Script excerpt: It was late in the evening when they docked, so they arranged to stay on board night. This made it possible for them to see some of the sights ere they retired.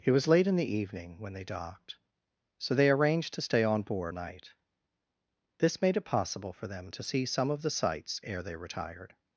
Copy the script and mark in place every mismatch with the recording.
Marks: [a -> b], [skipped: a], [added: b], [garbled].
It was late in the evening when they docked, so they arranged to stay on board night. This made it possible for them to see some of the sights ere they retired.